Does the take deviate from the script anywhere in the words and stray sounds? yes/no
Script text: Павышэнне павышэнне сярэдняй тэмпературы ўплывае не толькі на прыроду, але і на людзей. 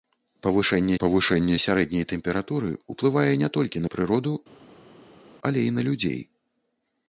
no